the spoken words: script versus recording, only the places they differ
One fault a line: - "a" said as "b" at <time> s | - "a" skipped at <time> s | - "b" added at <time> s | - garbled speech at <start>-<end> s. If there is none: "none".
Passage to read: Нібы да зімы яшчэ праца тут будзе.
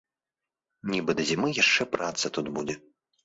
none